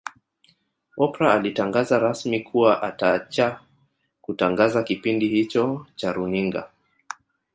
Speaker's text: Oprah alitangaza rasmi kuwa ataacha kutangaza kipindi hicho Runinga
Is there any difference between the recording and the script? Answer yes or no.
yes